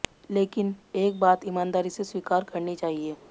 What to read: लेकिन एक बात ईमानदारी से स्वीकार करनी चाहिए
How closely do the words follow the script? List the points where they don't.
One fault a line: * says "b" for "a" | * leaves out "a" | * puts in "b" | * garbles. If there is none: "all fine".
all fine